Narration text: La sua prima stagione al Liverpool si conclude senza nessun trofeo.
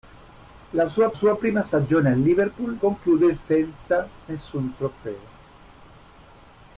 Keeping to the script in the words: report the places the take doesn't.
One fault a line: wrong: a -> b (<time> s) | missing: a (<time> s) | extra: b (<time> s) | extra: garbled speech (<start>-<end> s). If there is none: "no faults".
extra: sua (1.1 s)
missing: si (2.8 s)